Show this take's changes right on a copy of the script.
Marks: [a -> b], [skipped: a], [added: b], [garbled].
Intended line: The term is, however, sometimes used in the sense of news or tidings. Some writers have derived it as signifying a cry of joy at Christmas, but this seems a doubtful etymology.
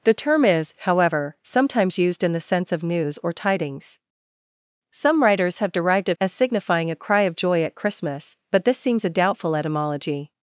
The term is, however, sometimes used in the sense of news or tidings. Some writers have derived it as signifying a cry of joy at Christmas, but this seems a doubtful etymology.